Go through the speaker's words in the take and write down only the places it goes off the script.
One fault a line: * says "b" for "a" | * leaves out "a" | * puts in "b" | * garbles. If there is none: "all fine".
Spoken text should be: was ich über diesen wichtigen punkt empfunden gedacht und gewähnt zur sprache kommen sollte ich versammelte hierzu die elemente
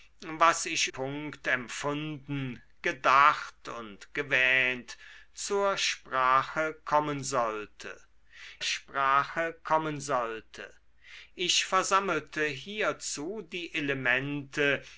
* leaves out "über diesen wichtigen"
* puts in "sprache kommen sollte"